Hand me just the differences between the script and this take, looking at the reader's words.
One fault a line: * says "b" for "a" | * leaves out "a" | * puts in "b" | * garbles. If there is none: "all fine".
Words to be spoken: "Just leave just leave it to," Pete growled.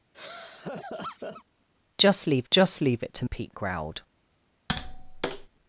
all fine